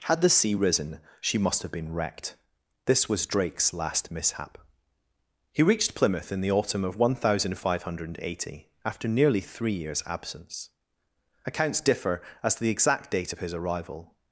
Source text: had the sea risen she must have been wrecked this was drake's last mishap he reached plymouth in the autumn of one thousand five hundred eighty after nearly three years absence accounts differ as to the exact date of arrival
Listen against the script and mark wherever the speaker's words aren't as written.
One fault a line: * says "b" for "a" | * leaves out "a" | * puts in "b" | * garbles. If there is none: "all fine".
* puts in "his"